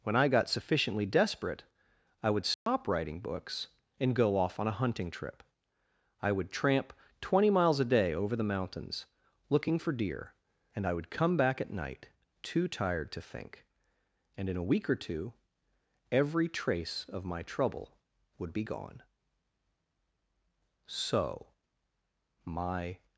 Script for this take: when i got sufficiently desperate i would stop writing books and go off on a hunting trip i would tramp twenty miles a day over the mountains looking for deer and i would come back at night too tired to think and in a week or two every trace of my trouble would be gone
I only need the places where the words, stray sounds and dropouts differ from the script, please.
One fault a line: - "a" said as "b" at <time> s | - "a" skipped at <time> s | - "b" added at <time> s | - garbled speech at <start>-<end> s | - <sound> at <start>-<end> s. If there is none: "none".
- dropout at 2.5-2.7 s
- "so my" added at 20.8 s